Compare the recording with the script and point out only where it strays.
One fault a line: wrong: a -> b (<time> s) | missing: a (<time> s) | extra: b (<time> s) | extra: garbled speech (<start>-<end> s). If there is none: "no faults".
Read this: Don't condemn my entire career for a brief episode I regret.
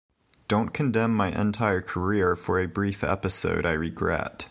no faults